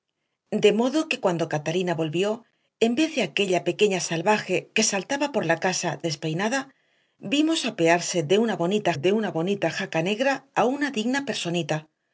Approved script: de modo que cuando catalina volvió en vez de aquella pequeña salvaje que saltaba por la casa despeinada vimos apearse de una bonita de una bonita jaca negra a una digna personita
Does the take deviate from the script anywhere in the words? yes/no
no